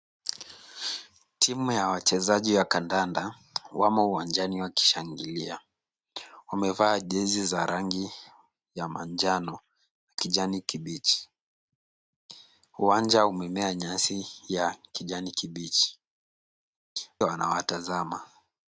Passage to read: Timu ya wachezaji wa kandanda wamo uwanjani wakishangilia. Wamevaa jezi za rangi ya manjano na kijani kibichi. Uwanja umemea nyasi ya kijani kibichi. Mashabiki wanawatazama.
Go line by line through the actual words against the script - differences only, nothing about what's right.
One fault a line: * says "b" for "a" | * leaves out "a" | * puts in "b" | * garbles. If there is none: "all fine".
* leaves out "Mashabiki"